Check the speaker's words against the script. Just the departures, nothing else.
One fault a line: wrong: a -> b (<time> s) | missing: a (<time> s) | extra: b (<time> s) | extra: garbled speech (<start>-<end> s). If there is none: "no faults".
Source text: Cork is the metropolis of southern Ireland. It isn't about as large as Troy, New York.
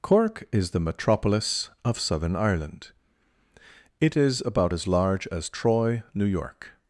wrong: isn't -> is (4.2 s)